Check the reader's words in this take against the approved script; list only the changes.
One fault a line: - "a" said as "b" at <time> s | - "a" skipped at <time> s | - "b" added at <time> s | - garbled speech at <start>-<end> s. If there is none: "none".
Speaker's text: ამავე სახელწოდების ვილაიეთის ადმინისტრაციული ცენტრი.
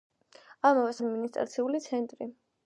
- "სახელწოდების ვილაიეთის" skipped at 0.9 s